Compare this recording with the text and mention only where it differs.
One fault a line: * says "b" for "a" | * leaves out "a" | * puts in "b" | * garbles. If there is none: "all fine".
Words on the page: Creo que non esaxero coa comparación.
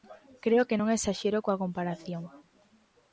all fine